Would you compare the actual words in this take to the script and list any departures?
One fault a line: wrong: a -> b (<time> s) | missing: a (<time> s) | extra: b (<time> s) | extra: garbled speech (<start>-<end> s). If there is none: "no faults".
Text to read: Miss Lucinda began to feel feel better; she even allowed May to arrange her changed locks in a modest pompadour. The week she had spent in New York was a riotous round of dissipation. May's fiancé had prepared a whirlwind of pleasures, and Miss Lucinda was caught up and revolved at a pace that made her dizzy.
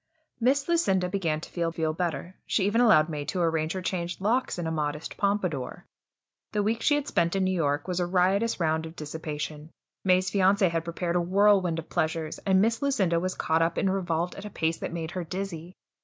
no faults